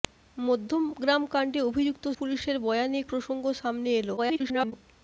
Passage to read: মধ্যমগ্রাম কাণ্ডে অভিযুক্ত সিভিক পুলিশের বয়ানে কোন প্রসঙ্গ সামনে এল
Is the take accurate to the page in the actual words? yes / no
no